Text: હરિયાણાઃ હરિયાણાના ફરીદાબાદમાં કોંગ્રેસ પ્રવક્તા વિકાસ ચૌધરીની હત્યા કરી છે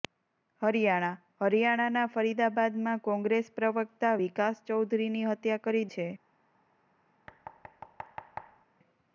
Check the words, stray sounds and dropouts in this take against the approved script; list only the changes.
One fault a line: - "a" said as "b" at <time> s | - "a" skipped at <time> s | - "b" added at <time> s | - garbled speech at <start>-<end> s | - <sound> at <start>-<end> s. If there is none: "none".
- thud at 7.3-8.7 s